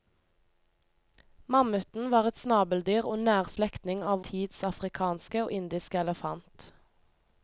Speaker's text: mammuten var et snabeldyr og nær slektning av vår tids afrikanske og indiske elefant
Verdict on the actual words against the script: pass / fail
fail